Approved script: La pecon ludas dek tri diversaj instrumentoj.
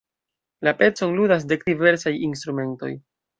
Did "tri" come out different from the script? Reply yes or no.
yes